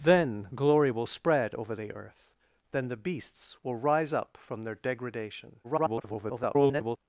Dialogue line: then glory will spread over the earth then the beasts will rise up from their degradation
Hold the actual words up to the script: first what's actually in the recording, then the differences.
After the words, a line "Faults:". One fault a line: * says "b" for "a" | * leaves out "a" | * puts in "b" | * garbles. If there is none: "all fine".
then glory will spread over the earth then the beasts will rise up from their degradation [garbled]
Faults:
* garbles